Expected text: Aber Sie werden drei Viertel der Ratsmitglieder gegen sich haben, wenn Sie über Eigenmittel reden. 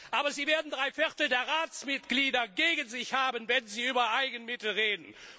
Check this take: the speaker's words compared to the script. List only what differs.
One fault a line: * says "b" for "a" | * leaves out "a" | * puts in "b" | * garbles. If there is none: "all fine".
all fine